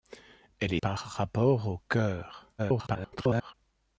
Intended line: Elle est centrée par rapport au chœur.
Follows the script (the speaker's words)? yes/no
no